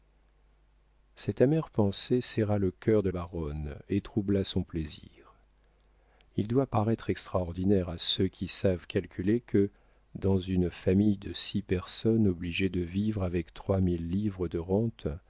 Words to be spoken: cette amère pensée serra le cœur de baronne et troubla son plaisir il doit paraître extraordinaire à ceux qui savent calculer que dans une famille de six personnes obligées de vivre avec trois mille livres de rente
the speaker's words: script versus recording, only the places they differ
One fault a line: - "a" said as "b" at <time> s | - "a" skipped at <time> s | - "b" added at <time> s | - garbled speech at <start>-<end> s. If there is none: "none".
none